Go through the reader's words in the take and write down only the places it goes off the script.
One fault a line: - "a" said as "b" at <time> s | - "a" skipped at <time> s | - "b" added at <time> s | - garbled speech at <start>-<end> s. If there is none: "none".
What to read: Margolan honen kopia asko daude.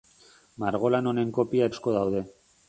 none